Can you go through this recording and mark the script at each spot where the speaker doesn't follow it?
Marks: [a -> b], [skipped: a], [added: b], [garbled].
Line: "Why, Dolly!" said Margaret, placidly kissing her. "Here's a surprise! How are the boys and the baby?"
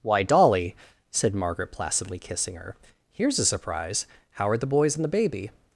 "Why, Dolly!" said Margaret, placidly kissing her. "Here's a surprise! How are the boys and the baby?"